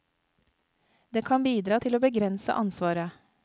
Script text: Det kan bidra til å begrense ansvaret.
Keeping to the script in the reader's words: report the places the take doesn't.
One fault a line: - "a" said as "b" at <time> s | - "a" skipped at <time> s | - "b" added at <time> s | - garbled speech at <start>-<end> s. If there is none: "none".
none